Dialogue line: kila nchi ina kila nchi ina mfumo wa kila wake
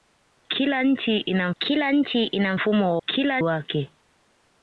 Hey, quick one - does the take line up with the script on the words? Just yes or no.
yes